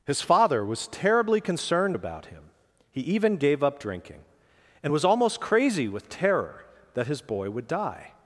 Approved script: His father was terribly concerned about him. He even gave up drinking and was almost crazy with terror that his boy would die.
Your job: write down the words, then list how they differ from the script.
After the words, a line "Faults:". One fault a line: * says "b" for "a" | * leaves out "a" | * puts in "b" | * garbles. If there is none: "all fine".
His father was terribly concerned about him. He even gave up drinking and was almost crazy with terror that his boy would die.
Faults:
all fine